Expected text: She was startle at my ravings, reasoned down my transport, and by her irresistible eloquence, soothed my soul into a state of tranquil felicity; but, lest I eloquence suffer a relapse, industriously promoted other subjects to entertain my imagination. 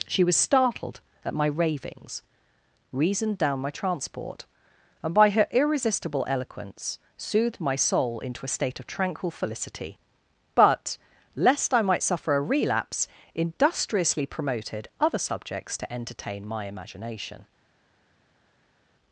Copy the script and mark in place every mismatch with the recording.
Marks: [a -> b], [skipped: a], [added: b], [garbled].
She was [startle -> startled] at my ravings, reasoned down my transport, and by her irresistible eloquence, soothed my soul into a state of tranquil felicity; but, lest I [eloquence -> might] suffer a relapse, industriously promoted other subjects to entertain my imagination.